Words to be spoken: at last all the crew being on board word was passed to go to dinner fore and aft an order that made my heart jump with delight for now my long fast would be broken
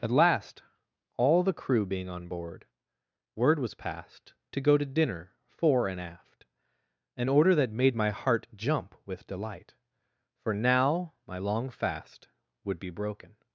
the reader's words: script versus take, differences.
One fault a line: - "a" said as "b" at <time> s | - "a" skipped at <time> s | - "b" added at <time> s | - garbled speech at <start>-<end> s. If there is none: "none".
none